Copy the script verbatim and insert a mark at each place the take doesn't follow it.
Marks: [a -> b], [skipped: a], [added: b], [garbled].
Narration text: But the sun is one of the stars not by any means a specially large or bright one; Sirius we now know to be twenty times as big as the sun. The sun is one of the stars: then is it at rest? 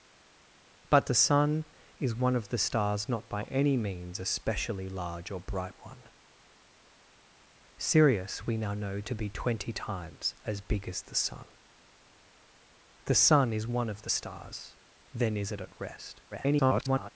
But the sun is one of the stars not by any means a specially large or bright one; Sirius we now know to be twenty times as big as the sun. The sun is one of the stars: then is it at rest? [garbled]